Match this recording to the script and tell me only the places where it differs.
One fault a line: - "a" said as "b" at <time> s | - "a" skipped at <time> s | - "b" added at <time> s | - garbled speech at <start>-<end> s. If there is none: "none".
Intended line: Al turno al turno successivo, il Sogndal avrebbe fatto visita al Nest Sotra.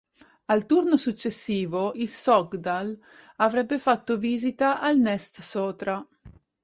- "al turno" skipped at 0.9 s